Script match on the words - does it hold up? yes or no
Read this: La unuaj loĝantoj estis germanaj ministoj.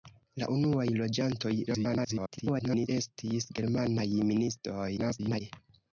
no